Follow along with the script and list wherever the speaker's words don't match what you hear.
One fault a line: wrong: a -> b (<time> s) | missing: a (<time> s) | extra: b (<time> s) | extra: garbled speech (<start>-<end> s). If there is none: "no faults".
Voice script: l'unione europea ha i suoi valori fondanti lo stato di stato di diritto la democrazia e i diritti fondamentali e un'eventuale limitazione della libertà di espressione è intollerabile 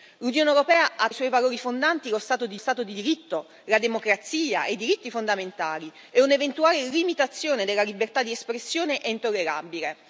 no faults